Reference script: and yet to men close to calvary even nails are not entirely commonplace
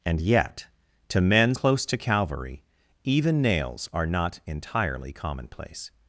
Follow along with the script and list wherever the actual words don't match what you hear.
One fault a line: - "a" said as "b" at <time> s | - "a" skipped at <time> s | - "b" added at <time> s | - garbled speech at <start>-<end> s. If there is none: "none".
none